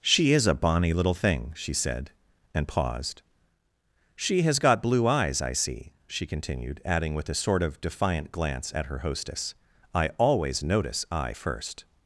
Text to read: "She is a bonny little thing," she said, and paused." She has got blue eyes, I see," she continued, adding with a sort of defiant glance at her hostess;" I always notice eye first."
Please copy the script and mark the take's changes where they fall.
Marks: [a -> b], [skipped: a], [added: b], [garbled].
"She is a bonny little thing," she said, and paused." She has got blue eyes, I see," she continued, adding with a sort of defiant glance at her hostess;" I always notice eye first."